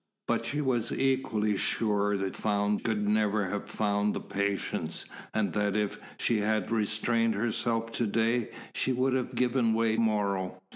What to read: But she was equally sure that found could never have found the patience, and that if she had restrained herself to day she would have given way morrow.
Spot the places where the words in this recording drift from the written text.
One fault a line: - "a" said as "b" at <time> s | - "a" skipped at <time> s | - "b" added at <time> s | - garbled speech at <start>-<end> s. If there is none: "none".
none